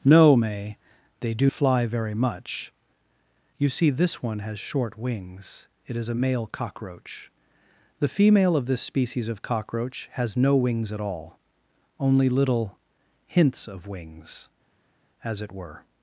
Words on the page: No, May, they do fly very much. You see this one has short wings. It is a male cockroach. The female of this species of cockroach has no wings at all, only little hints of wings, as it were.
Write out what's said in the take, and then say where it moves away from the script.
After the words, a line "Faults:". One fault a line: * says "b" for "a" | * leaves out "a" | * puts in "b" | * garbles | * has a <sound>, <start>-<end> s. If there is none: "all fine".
No, May, they do fly very much. You see this one has short wings. It is a male cockroach. The female of this species of cockroach has no wings at all, only little hints of wings, as it were.
Faults:
all fine